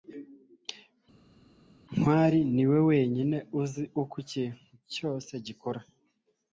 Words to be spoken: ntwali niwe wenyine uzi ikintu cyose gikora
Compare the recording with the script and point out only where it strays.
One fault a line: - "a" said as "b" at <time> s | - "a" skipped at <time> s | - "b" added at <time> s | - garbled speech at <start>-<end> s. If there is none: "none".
- "uko" added at 4.0 s